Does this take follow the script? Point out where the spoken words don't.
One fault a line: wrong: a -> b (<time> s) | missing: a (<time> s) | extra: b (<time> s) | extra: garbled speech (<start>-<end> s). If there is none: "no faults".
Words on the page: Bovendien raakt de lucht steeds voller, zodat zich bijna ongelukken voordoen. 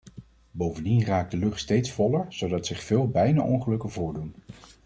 extra: veel (2.8 s)